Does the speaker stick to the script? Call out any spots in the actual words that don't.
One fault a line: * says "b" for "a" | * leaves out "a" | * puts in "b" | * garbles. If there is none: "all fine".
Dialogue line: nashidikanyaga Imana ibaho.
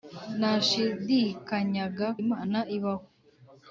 all fine